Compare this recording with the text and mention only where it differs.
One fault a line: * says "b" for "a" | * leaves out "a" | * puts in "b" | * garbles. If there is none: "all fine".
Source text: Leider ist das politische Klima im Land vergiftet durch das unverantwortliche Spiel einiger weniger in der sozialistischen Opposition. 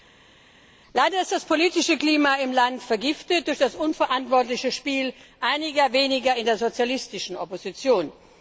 all fine